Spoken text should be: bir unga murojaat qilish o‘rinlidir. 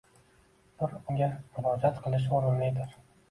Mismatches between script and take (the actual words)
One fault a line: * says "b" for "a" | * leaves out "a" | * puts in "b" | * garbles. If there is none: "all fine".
all fine